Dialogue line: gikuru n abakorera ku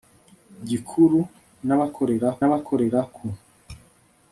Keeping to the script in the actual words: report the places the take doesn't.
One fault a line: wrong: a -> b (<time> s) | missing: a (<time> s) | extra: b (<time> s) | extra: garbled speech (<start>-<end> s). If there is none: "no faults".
extra: abakorera (2.5 s)